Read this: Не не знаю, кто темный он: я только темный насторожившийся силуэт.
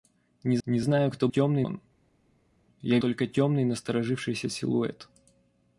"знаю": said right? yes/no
yes